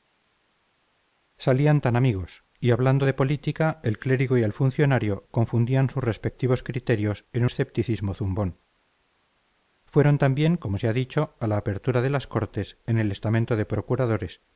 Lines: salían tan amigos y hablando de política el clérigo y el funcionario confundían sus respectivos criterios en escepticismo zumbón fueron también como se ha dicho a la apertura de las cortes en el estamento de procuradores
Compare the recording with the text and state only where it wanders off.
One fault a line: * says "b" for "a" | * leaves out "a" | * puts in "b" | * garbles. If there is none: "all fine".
all fine